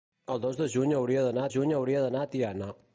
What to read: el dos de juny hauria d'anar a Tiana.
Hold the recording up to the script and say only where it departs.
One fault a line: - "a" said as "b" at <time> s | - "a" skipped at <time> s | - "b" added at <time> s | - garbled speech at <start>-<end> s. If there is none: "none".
- "juny hauria d'anar" added at 1.5 s